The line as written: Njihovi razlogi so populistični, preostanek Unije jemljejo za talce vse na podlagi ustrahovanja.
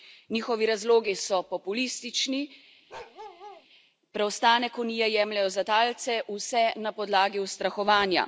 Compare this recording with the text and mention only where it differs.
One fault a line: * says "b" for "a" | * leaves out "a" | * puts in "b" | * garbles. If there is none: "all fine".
all fine